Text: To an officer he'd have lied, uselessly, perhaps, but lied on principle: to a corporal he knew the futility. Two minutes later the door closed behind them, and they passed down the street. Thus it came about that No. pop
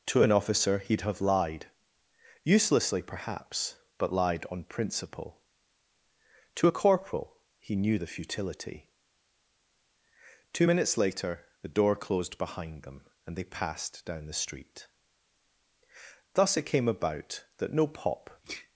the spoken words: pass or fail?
pass